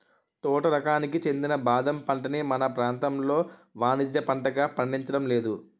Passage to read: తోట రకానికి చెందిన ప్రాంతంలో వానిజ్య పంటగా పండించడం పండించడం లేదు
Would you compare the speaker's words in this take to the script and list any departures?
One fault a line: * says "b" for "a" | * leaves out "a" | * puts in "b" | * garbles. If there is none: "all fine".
* puts in "బాదం పంటని మన"
* leaves out "పండించడం"